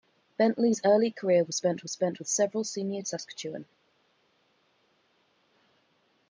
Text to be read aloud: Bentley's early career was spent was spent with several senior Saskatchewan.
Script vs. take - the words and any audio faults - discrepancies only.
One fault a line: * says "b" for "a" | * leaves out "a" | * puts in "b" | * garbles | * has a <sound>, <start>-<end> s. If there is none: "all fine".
all fine